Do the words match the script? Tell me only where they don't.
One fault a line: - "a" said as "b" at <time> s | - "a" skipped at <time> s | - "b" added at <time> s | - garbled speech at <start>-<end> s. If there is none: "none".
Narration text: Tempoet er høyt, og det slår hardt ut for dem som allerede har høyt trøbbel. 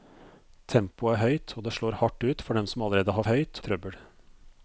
none